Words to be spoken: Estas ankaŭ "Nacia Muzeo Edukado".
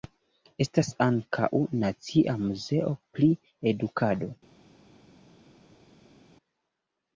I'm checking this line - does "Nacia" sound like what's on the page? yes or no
yes